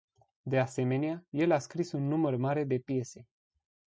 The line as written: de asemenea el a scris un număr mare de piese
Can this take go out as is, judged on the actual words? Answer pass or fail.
pass